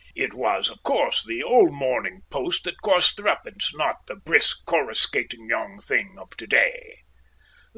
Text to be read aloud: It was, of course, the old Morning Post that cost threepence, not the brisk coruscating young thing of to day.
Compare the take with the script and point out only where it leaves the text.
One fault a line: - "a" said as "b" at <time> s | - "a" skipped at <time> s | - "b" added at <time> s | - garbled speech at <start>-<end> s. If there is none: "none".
none